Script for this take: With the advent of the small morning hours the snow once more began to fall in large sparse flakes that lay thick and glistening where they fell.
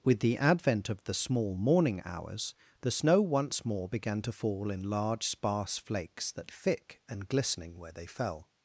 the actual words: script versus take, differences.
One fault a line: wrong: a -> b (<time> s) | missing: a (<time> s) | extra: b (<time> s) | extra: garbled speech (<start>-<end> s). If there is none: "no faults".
missing: lay (6.5 s)